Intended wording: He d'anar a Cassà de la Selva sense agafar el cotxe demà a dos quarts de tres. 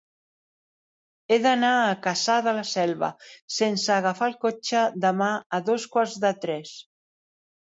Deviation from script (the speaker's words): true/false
false